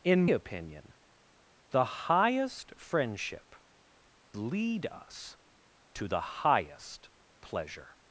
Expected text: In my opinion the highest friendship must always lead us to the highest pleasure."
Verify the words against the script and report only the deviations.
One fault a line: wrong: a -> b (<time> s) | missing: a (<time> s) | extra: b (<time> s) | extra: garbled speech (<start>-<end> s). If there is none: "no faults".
missing: my (0.2 s)
missing: must always (3.5 s)